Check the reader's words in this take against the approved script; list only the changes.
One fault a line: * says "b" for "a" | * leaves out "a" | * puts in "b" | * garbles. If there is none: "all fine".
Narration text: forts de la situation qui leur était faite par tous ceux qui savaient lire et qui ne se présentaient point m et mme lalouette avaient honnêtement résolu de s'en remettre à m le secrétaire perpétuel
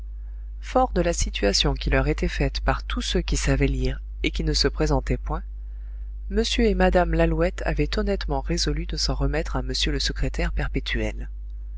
all fine